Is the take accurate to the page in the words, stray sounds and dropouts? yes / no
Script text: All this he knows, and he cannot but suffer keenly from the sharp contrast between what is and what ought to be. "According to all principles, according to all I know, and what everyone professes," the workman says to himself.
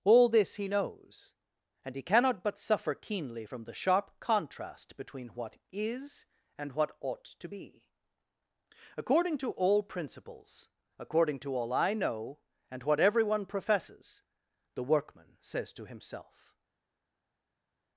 yes